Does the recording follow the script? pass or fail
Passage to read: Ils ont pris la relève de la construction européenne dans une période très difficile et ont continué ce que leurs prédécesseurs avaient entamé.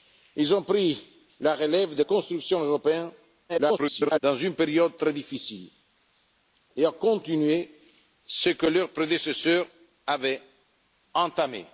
fail